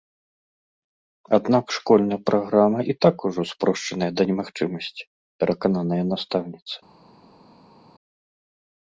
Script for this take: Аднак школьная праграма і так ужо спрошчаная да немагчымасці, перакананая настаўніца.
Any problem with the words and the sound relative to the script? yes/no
no